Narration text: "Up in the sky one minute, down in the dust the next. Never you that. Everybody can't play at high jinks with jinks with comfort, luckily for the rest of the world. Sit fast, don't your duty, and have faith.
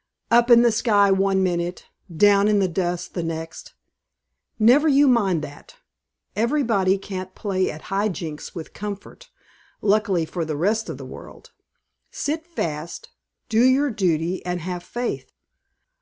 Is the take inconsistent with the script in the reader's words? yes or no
yes